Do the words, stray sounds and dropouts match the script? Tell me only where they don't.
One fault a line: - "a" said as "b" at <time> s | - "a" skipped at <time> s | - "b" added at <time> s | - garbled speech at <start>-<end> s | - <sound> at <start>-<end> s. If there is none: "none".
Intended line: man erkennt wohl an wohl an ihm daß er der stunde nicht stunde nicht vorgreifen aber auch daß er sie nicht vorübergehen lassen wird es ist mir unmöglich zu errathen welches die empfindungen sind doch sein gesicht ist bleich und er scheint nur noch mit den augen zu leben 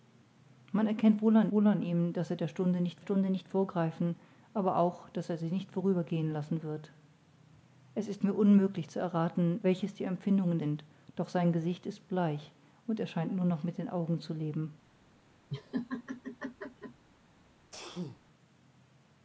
- laugh at 15.5-17.1 s
- sneeze at 17.7-18.2 s